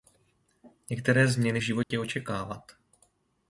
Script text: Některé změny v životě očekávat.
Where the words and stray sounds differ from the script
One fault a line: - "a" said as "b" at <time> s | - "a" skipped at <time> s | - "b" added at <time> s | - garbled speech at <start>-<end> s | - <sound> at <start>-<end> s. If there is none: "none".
- dropout at 1.8-1.9 s